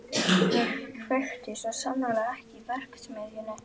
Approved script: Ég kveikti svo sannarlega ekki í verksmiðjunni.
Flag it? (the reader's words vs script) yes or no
no